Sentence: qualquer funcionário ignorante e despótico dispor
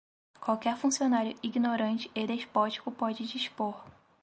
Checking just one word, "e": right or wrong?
right